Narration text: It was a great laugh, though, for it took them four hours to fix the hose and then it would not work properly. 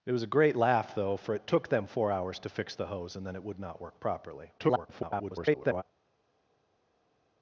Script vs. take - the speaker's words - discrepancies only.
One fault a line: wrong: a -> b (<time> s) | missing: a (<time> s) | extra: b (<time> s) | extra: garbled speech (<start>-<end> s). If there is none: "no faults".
extra: garbled speech (4.6-5.8 s)